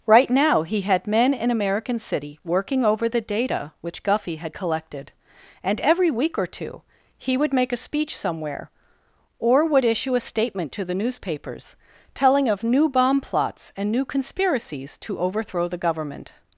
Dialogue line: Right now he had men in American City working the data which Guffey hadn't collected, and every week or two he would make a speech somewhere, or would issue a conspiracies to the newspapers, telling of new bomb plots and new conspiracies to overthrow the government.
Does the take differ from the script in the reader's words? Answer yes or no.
yes